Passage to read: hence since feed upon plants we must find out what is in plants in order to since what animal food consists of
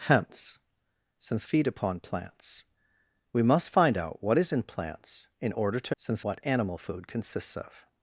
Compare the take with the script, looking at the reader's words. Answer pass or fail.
pass